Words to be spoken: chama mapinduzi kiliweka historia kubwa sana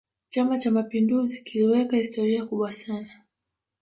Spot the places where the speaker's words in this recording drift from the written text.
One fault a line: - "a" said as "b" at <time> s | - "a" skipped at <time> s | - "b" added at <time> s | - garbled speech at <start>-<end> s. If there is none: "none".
- "cha" added at 0.6 s